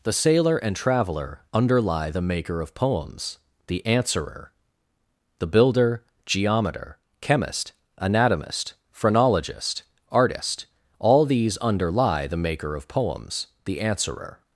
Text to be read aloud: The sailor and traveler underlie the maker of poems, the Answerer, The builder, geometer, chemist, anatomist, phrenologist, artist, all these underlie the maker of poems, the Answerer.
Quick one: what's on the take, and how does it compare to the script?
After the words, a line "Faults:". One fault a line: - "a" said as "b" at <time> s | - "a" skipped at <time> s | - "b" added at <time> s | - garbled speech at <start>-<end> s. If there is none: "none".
The sailor and traveler underlie the maker of poems, the Answerer, The builder, geometer, chemist, anatomist, phrenologist, artist, all these underlie the maker of poems, the Answerer.
Faults:
none